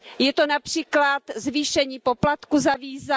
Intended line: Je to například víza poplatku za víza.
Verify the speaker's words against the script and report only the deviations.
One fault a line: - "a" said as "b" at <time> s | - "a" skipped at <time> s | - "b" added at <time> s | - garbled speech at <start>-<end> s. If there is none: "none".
- "víza" said as "zvýšení" at 1.4 s